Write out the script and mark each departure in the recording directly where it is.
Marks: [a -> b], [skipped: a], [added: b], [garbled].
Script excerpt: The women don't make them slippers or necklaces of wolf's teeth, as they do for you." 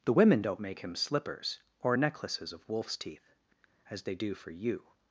The women don't make [them -> him] slippers or necklaces of wolf's teeth, as they do for you."